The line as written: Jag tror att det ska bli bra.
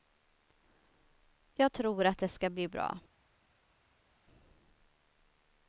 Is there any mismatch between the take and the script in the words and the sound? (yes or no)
no